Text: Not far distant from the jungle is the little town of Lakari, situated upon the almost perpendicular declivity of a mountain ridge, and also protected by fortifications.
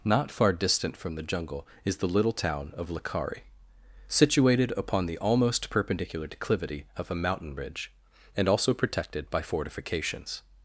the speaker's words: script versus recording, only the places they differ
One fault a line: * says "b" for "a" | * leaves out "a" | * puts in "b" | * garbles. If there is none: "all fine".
all fine